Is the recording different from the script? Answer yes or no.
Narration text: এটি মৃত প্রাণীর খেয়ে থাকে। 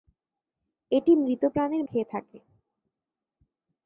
no